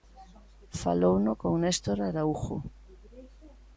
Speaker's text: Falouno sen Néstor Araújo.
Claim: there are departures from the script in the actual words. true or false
true